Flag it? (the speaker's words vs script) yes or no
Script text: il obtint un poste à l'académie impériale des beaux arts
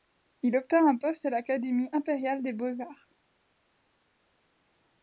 no